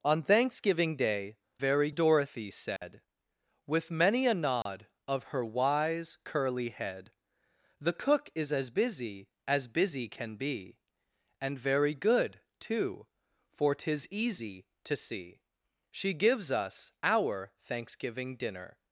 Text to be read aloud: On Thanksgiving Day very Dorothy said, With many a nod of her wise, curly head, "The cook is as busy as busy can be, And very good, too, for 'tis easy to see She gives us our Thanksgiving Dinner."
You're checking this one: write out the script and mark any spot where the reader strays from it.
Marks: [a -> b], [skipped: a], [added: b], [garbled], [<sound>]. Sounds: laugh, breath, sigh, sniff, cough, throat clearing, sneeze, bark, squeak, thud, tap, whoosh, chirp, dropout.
On Thanksgiving Day very Dorothy said, [dropout] With many a nod [dropout] of her wise, curly head, "The cook is as busy as busy can be, And very good, too, for 'tis easy to see She gives us our Thanksgiving Dinner."